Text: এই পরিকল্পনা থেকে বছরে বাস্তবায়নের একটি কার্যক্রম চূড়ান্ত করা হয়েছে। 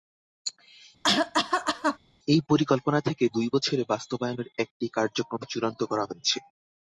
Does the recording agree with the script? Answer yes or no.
no